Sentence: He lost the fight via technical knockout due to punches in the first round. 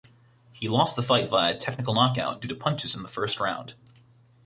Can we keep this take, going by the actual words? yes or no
yes